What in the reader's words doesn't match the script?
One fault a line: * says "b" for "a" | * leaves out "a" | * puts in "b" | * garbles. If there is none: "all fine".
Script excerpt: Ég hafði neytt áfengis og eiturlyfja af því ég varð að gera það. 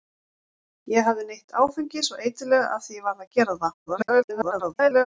* garbles